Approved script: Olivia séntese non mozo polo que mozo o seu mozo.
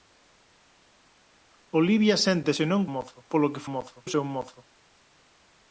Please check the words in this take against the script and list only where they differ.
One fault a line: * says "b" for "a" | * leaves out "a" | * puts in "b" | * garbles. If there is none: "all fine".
all fine